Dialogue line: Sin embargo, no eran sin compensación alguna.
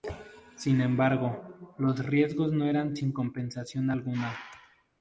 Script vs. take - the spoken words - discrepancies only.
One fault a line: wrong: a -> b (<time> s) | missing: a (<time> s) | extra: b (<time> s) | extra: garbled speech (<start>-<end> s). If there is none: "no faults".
extra: los riesgos (1.8 s)